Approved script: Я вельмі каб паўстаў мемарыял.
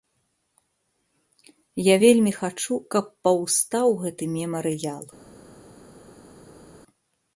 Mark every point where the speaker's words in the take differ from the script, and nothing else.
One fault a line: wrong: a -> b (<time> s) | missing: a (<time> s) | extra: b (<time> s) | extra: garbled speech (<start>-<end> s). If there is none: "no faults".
extra: хачу (2.4 s)
extra: гэты (4.0 s)